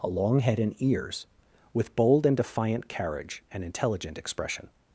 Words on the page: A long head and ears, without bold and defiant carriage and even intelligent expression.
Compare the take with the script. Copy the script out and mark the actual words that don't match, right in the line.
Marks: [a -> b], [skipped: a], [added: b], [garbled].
A long head and ears, [without -> with] bold and defiant carriage and [skipped: even] intelligent expression.